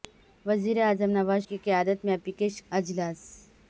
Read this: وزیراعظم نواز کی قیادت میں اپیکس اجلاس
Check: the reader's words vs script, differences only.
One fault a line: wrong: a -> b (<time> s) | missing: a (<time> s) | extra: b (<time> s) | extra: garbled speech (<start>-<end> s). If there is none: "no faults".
no faults